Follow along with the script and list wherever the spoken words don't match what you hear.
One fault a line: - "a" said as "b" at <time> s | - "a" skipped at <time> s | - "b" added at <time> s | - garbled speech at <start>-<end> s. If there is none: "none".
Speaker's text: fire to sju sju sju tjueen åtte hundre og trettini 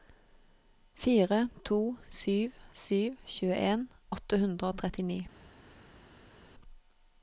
- "sju" skipped at 3.0 s